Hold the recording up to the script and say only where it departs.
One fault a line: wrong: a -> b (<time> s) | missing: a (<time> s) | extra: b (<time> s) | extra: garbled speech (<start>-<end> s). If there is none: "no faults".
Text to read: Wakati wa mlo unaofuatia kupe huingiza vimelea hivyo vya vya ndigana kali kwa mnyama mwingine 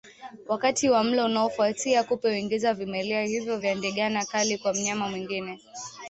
missing: vya (3.8 s)